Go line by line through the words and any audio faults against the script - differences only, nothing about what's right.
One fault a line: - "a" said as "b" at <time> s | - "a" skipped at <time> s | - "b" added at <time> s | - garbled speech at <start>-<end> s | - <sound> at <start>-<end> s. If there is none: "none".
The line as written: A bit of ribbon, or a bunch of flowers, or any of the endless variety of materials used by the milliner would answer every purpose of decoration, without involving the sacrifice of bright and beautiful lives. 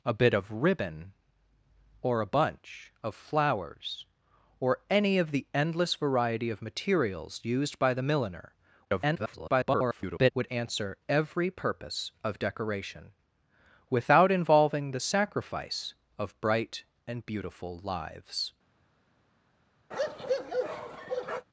- garbled speech at 8.8-10.3 s
- bark at 19.9-21.5 s